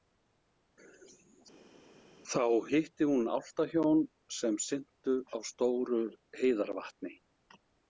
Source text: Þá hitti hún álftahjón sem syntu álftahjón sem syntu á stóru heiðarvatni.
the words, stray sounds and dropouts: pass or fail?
fail